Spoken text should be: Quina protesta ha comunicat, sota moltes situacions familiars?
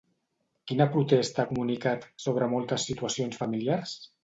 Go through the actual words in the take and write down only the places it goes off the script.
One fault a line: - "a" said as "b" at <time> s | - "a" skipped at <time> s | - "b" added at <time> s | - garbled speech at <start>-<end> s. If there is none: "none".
- "sota" said as "sobre" at 2.3 s